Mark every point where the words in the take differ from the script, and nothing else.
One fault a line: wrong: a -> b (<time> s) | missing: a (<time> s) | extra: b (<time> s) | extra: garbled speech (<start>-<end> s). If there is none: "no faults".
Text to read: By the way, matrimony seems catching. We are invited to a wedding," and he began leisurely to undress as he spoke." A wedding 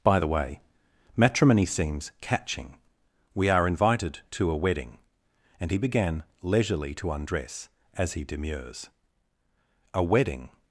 wrong: spoke -> demurs (8.2 s)